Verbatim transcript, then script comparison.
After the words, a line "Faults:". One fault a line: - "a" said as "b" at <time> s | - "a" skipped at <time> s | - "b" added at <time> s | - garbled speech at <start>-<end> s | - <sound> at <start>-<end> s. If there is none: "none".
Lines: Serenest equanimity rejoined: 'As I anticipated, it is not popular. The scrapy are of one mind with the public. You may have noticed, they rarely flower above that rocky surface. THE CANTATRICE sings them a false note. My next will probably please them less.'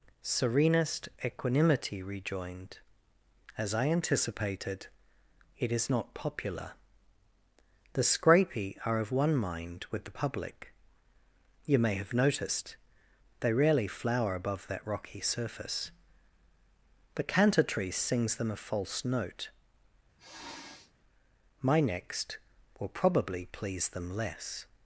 Serenest equanimity rejoined: 'As I anticipated, it is not popular. The scrapy are of one mind with the public. You may have noticed, they rarely flower above that rocky surface. THE CANTATRICE sings them a false note. My next will probably please them less.'
Faults:
- sniff at 20.2-20.9 s